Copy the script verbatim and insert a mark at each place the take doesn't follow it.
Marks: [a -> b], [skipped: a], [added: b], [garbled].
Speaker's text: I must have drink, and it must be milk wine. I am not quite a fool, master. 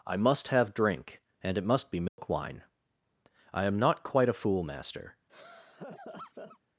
I must have drink, and it must be milk wine. I am not quite a fool, master.